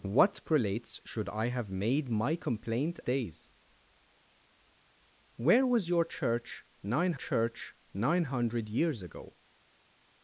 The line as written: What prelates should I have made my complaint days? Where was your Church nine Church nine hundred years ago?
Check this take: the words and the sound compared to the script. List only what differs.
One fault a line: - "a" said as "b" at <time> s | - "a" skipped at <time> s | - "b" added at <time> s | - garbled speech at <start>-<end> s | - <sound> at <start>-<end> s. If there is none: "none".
none